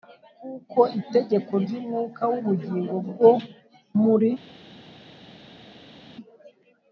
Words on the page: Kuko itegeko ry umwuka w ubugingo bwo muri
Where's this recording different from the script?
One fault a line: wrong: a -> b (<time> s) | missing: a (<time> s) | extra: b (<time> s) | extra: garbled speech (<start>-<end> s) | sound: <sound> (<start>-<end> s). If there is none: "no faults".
no faults